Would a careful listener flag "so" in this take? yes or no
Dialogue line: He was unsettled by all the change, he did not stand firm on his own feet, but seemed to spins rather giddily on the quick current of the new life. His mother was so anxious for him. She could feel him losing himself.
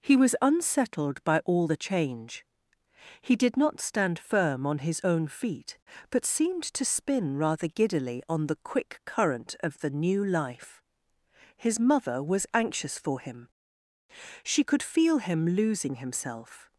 yes